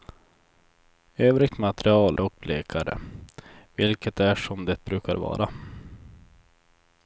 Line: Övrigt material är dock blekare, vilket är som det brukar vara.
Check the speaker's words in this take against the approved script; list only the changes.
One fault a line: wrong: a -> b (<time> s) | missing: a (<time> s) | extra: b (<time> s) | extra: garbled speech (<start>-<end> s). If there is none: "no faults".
missing: är (2.2 s)